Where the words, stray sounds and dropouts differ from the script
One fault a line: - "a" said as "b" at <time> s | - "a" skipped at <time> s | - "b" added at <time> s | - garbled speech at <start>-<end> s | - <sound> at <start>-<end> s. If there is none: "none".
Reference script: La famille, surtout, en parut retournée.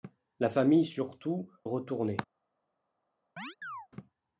- "en parut" skipped at 1.5 s
- chirp at 3.4-3.9 s